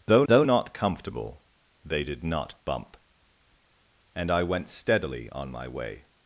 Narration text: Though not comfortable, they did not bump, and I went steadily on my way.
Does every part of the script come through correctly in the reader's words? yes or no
no